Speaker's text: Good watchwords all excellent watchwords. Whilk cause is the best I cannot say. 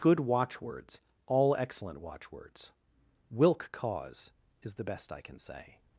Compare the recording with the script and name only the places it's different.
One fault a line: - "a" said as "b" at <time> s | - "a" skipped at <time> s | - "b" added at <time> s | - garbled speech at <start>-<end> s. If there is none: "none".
- "cannot" said as "can" at 5.2 s